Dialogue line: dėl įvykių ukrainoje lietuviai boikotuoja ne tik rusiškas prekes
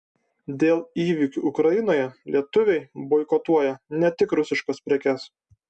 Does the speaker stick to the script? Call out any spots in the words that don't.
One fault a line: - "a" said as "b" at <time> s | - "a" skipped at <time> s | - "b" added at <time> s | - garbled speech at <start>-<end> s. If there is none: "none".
none